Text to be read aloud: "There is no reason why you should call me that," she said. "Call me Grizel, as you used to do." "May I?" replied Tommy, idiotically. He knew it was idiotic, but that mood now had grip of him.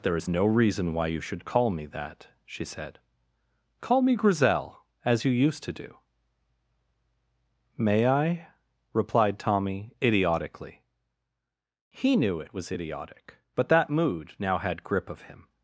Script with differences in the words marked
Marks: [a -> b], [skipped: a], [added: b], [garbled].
"There is no reason why you should call me that," she said. "Call me Grizel, as you used to do." "May I?" replied Tommy, idiotically. He knew it was idiotic, but that mood now had grip of him.